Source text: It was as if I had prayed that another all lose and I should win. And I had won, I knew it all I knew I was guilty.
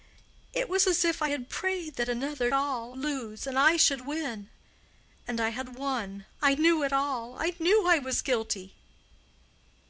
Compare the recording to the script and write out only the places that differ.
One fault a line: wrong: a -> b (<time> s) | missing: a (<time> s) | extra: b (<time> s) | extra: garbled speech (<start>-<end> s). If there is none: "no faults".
no faults